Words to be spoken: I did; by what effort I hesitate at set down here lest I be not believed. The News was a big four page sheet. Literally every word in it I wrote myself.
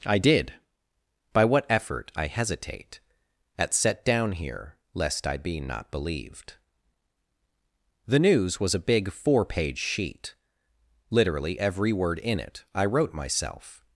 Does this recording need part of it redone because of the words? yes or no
no